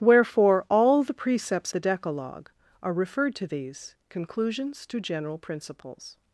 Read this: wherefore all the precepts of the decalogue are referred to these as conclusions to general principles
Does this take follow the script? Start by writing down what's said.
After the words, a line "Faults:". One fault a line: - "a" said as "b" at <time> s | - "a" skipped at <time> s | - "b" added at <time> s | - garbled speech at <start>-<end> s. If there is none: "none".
wherefore all the precepts the decalogue are referred to these conclusions to general principles
Faults:
- "of" skipped at 1.7 s
- "as" skipped at 3.9 s